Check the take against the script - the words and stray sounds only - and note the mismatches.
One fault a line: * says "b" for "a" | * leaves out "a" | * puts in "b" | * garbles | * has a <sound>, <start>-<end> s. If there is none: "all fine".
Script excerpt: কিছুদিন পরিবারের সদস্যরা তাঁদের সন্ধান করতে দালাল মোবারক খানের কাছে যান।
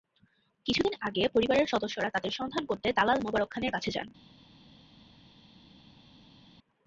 * puts in "আগে"